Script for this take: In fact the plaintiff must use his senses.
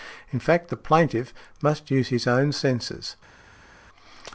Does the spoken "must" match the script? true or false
true